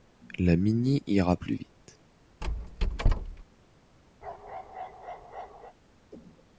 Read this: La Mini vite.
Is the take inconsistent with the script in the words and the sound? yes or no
yes